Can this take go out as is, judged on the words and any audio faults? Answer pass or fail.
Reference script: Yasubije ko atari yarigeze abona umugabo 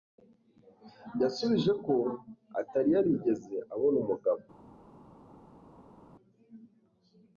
pass